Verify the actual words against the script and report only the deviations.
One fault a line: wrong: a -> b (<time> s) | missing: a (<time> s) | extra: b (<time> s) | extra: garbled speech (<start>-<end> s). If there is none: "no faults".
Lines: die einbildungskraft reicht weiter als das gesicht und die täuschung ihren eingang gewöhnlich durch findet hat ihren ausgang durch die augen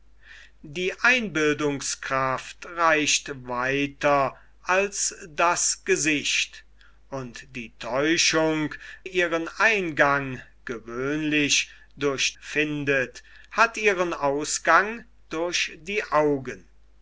no faults